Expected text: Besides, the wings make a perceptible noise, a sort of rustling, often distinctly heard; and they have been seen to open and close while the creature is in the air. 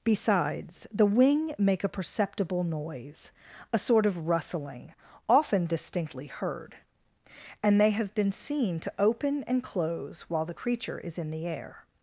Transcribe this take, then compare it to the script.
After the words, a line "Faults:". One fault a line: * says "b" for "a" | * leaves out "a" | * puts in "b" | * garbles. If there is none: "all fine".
Besides, the wing make a perceptible noise, a sort of rustling, often distinctly heard; and they have been seen to open and close while the creature is in the air.
Faults:
* says "wing" for "wings"